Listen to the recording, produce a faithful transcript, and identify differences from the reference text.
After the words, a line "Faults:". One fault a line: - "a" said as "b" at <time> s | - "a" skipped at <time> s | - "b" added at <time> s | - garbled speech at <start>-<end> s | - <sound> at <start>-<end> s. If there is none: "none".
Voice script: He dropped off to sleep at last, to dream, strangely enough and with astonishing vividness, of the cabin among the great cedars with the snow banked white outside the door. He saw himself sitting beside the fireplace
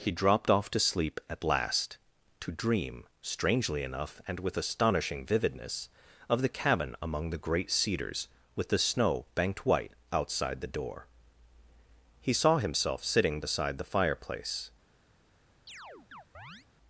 He dropped off to sleep at last, to dream, strangely enough and with astonishing vividness, of the cabin among the great cedars with the snow banked white outside the door. He saw himself sitting beside the fireplace
Faults:
- chirp at 15.7-16.7 s